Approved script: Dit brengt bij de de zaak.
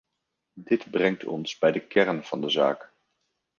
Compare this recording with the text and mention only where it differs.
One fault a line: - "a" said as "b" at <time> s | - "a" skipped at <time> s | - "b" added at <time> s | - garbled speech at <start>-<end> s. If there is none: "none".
- "ons" added at 1.2 s
- "kern van" added at 1.8 s